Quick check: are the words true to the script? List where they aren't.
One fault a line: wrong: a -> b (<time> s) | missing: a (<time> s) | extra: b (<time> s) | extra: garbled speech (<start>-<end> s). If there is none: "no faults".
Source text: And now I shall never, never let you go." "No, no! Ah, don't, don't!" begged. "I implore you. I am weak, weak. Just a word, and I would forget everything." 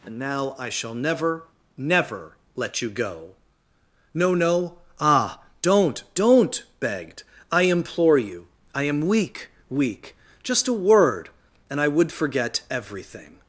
no faults